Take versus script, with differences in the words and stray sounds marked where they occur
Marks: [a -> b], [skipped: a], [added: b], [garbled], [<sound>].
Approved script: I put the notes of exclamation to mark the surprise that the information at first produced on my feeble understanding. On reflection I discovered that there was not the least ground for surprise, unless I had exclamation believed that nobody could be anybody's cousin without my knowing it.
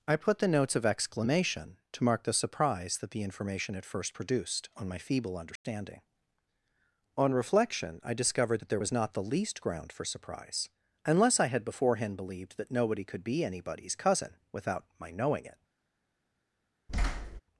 I put the notes of exclamation to mark the surprise that the information at first produced on my feeble understanding. [dropout] On reflection I discovered that there was not the least ground for surprise, unless I had [exclamation -> beforehand] believed that nobody could be anybody's cousin without my knowing it. [thud]